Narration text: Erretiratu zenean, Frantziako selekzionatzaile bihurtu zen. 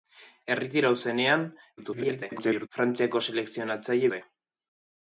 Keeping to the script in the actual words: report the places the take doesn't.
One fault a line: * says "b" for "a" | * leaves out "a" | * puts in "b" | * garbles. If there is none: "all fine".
* garbles
* leaves out "bihurtu"